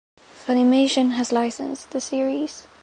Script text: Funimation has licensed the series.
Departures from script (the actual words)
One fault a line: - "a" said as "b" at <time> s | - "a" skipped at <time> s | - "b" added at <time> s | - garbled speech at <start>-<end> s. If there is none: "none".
none